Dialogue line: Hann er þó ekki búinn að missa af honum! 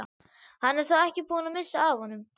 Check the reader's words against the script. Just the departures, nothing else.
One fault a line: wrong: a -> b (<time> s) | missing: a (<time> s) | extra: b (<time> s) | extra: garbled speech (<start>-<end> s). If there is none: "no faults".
no faults